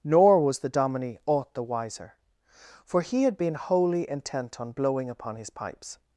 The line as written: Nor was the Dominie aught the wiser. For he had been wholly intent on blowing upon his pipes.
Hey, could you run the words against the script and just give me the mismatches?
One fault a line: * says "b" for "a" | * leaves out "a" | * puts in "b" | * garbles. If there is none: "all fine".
all fine